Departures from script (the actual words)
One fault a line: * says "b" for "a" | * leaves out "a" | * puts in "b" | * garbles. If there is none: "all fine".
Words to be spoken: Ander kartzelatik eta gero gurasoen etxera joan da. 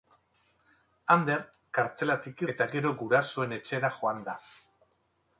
all fine